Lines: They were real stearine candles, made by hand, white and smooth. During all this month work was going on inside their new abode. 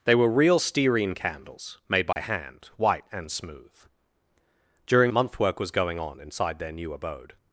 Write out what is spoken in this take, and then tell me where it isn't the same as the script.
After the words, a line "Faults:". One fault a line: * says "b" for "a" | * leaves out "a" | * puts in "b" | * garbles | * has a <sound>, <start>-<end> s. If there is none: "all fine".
They were real stearine candles, made by hand, white and smooth. During month work was going on inside their new abode.
Faults:
* has a dropout, 2.1-2.2 s
* leaves out "all this"